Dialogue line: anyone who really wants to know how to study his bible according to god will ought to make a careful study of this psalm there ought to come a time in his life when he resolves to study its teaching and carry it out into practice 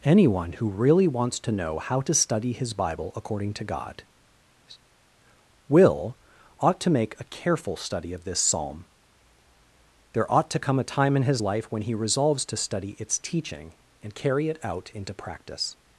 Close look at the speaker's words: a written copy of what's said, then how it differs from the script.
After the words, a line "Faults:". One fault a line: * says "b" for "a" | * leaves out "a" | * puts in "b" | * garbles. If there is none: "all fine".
anyone who really wants to know how to study his bible according to god will ought to make a careful study of this psalm there ought to come a time in his life when he resolves to study its teaching and carry it out into practice
Faults:
all fine